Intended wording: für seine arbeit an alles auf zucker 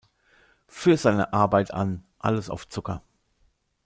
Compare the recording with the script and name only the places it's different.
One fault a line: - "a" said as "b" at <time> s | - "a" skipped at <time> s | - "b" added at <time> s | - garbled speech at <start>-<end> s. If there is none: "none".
none